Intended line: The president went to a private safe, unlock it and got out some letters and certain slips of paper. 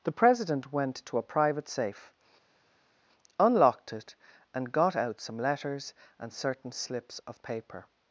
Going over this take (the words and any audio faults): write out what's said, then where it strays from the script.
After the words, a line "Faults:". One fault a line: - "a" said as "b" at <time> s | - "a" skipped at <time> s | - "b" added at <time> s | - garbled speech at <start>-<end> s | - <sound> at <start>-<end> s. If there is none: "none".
The president went to a private safe, unlocked it and got out some letters and certain slips of paper.
Faults:
- "unlock" said as "unlocked" at 3.4 s